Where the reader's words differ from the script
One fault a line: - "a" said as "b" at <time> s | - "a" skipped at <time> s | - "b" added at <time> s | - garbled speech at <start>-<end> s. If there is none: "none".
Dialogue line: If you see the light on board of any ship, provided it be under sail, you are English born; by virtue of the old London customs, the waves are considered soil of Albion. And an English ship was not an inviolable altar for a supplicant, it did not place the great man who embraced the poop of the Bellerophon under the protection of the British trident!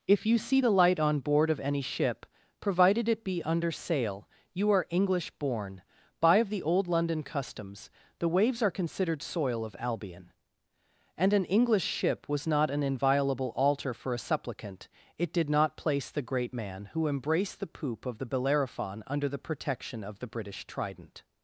- "virtue" skipped at 6.4 s